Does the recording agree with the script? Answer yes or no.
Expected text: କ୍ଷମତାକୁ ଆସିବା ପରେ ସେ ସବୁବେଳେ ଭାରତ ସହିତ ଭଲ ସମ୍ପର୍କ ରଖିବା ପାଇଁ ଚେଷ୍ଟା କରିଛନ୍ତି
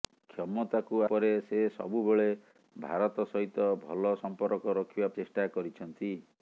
no